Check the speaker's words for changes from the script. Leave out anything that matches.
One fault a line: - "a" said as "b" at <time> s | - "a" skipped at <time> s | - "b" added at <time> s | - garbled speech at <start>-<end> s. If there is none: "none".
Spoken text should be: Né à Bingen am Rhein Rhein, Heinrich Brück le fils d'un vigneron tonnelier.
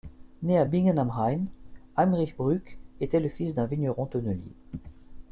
- "Rhein" skipped at 1.5 s
- "était" added at 3.0 s